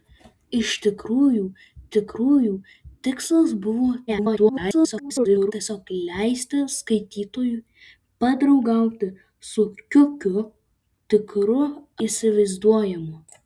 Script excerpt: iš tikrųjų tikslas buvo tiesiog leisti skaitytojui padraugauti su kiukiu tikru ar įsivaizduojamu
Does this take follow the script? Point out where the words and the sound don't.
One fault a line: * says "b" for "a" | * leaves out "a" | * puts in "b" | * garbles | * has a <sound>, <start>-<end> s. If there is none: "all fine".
* puts in "tikrųjų"
* garbles
* leaves out "ar"